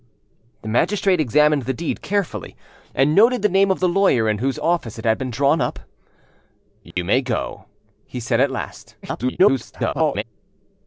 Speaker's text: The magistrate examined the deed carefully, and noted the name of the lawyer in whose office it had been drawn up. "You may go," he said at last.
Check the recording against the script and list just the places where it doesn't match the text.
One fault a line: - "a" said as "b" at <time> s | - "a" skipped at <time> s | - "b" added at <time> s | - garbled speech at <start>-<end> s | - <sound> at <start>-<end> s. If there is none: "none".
- dropout at 6.9-7.0 s
- garbled speech at 9.0-10.2 s